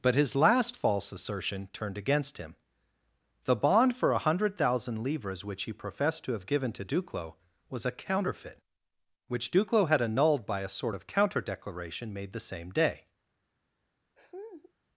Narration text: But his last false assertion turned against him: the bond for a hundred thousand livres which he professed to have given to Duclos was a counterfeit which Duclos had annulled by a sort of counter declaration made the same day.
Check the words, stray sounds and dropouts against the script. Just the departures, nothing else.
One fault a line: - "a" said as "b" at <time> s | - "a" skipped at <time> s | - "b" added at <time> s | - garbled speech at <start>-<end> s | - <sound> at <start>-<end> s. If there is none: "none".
- laugh at 14.2-14.7 s